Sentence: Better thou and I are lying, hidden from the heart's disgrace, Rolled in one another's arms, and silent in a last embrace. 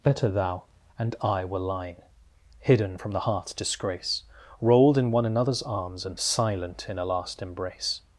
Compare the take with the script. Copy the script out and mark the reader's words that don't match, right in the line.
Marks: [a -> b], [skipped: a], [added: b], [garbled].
Better thou and I [are -> were] lying, hidden from the heart's disgrace, Rolled in one another's arms, and silent in a last embrace.